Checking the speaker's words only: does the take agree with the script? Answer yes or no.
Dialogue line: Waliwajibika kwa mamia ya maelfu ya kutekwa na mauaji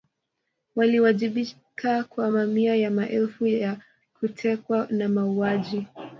yes